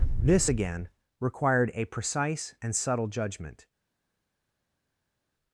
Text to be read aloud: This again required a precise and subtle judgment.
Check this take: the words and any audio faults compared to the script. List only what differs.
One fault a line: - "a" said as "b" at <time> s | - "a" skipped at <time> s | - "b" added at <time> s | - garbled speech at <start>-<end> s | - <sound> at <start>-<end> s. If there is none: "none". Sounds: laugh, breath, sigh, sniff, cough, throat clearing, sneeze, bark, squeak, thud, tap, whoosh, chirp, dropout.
none